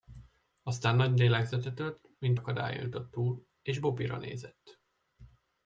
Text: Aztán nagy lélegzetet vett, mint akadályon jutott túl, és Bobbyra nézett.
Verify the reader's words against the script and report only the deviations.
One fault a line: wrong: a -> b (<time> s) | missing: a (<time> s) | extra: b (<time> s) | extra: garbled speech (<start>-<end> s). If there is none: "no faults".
no faults